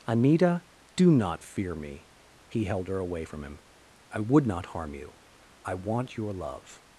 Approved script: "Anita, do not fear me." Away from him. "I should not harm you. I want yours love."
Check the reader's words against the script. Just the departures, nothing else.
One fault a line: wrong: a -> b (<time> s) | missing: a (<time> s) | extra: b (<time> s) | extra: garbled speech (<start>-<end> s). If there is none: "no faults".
extra: He held her (2.5 s)
wrong: should -> would (4.2 s)
wrong: yours -> your (6.2 s)